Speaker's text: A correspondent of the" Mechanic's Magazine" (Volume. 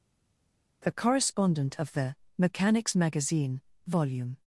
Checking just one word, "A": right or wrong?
wrong